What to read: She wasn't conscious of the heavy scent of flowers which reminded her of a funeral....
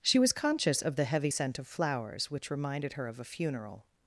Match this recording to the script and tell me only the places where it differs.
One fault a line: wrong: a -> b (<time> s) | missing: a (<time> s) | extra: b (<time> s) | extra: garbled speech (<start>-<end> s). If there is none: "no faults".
wrong: wasn't -> was (0.2 s)